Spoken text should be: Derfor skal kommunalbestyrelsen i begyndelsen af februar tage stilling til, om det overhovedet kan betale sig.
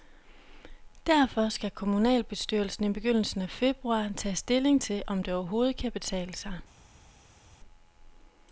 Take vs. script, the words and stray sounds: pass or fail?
pass